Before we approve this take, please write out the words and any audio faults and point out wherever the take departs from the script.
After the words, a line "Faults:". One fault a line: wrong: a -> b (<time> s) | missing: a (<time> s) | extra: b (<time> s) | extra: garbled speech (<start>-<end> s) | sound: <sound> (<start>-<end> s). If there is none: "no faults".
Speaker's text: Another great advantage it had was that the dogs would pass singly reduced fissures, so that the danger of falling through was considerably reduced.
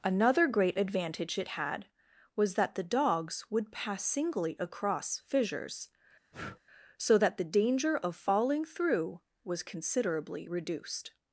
Another great advantage it had was that the dogs would pass singly across fissures, so that the danger of falling through was considerably reduced.
Faults:
wrong: reduced -> across (4.6 s)
sound: breath (6.3-6.6 s)